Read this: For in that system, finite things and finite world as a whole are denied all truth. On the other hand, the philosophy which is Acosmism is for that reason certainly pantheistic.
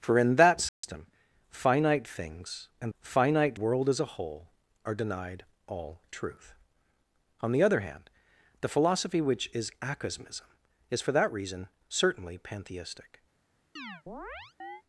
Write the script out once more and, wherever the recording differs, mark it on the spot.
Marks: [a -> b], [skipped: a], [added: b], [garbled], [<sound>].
For in that system, [dropout] finite things and finite world as a whole are denied all truth. On the other hand, the philosophy which is Acosmism is for that reason certainly pantheistic. [chirp]